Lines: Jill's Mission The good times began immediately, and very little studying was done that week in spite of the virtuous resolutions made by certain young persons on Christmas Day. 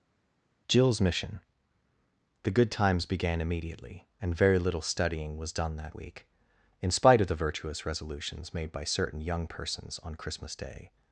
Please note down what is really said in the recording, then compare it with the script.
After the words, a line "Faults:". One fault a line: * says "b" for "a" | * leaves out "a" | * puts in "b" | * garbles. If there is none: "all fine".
Jill's Mission The good times began immediately, and very little studying was done that week in spite of the virtuous resolutions made by certain young persons on Christmas Day.
Faults:
all fine